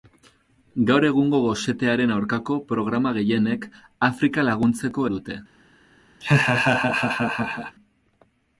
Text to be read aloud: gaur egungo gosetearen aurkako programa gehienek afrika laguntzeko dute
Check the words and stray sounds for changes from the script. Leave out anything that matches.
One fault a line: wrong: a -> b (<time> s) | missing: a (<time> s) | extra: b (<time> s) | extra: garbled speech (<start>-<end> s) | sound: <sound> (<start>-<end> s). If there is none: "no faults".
sound: laugh (6.2-7.8 s)